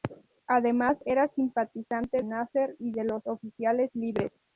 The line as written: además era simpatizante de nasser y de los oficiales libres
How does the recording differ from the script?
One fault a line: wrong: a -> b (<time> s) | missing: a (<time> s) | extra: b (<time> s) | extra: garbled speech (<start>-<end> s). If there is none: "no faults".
missing: de (2.2 s)